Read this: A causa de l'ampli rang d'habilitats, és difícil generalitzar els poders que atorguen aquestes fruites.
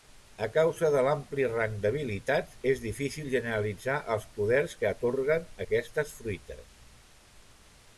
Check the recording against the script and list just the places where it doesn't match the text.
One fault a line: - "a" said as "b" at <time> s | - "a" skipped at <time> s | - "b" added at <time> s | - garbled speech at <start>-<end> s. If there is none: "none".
none